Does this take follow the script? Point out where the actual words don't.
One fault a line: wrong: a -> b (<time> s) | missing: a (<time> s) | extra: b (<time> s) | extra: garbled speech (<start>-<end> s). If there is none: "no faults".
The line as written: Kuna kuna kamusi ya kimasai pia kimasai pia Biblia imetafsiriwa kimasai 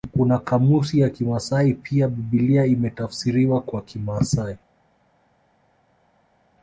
missing: kuna (0.4 s)
missing: kimasai pia (2.1 s)
extra: kwa (3.6 s)